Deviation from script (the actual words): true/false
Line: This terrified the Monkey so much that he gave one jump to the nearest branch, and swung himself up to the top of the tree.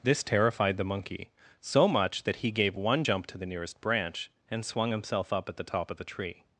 true